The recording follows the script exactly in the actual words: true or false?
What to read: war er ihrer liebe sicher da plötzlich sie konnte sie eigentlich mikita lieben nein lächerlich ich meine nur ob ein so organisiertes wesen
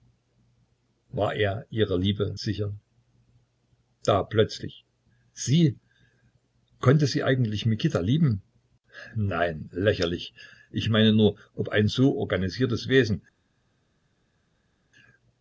true